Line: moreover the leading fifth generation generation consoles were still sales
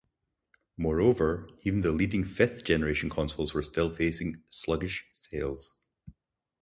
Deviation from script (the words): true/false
true